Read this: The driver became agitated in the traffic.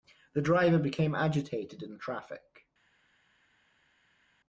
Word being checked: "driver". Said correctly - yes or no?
yes